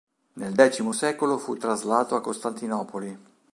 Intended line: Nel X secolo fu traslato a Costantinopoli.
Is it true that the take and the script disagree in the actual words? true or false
false